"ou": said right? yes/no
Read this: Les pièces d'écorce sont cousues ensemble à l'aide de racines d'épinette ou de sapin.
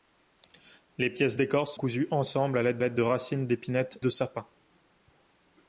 no